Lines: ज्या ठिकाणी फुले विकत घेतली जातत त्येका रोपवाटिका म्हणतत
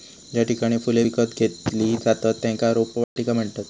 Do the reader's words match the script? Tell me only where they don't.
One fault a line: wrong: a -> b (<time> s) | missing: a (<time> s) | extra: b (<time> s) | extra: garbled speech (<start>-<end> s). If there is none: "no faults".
no faults